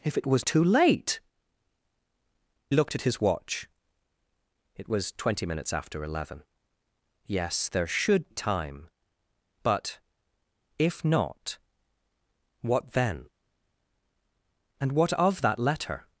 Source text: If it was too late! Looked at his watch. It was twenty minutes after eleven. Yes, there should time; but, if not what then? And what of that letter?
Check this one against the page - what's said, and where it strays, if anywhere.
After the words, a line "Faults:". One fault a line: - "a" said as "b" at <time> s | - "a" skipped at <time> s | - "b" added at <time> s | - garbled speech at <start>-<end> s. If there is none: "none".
If it was too late! Looked at his watch. It was twenty minutes after eleven. Yes, there should time; but, if not what then? And what of that letter?
Faults:
none